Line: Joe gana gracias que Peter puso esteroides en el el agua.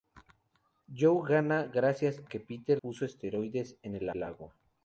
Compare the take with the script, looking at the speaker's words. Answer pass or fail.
pass